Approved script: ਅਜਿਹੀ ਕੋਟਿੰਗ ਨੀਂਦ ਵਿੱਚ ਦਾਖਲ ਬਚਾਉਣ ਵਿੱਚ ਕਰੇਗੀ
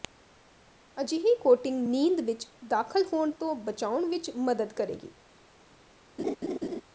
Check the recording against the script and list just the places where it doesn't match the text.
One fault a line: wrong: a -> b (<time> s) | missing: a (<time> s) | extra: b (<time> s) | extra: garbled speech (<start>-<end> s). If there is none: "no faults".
extra: ਹੋਣ ਤੋਂ (3.1 s)
extra: ਮਦਦ (4.4 s)